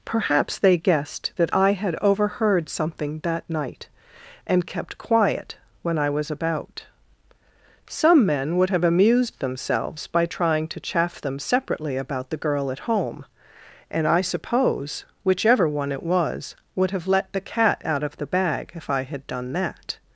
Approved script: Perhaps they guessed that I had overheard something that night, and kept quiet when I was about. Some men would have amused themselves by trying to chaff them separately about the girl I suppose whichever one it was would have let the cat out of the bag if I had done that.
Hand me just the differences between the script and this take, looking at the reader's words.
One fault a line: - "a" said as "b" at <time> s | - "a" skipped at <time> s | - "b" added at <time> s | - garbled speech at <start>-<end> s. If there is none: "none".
- "at home and" added at 12.7 s